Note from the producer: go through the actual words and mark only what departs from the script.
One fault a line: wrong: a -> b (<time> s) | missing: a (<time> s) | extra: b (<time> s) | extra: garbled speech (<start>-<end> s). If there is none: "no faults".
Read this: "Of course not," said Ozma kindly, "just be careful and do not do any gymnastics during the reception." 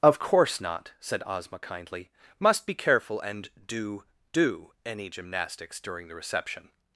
wrong: just -> must (2.4 s)
missing: not (4.0 s)